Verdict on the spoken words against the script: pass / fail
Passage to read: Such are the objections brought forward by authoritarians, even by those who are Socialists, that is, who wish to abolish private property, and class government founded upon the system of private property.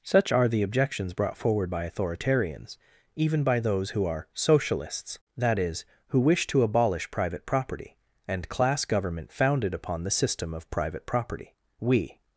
fail